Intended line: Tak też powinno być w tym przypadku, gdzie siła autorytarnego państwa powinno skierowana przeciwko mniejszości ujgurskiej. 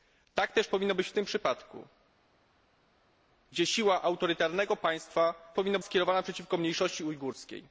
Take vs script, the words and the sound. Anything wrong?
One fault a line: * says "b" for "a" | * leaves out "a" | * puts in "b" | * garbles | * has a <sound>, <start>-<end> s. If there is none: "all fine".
all fine